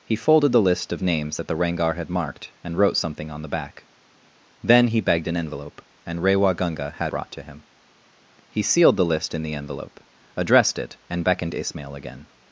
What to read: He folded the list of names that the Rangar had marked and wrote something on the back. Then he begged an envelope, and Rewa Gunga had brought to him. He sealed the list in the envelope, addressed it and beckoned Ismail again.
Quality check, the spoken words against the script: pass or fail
pass